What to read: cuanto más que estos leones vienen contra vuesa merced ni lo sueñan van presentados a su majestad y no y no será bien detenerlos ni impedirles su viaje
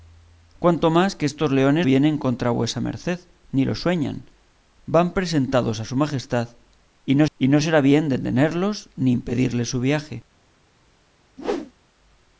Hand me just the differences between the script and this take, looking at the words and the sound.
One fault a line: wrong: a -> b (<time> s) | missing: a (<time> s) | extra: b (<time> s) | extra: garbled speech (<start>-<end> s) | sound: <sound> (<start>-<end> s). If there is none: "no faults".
sound: whoosh (11.4-11.7 s)